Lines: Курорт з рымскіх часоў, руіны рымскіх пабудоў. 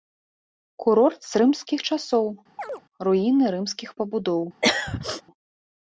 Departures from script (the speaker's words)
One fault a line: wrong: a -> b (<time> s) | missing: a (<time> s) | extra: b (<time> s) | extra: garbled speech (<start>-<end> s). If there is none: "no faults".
no faults